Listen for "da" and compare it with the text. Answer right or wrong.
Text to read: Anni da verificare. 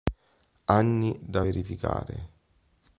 right